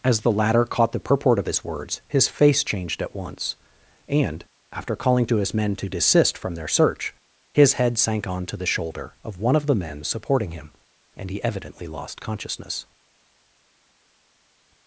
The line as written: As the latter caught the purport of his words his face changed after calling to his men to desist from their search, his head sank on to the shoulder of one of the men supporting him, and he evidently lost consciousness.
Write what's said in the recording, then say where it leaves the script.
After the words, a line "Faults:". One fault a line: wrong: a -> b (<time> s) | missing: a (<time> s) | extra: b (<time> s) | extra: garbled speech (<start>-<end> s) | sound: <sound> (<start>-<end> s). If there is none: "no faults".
As the latter caught the purport of his words his face changed at once, and, after calling to his men to desist from their search, his head sank on to the shoulder of one of the men supporting him, and he evidently lost consciousness.
Faults:
extra: at once and (3.0 s)